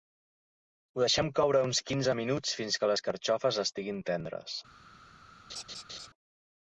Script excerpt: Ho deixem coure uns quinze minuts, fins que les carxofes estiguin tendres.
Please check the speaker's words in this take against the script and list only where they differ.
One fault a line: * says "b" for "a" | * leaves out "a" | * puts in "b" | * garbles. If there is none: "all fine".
all fine